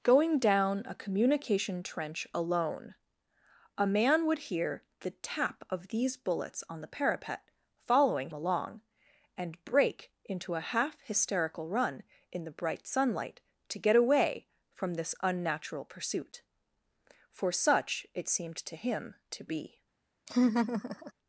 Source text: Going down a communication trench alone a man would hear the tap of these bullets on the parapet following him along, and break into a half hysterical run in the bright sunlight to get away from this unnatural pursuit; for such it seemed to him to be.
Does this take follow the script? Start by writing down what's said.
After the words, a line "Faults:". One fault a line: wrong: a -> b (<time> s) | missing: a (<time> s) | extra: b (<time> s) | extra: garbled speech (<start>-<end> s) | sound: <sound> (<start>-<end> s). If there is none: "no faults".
Going down a communication trench alone a man would hear the tap of these bullets on the parapet following along, and break into a half hysterical run in the bright sunlight to get away from this unnatural pursuit; for such it seemed to him to be.
Faults:
missing: him (8.3 s)
sound: laugh (20.3-21.1 s)